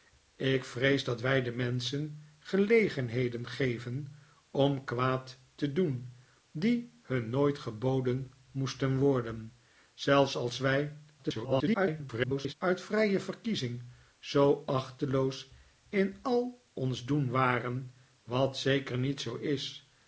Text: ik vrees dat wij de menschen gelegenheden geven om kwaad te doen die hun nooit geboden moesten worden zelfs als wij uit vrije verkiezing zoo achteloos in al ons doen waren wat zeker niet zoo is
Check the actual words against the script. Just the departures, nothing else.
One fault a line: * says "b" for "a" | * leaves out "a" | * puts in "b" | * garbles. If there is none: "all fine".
* garbles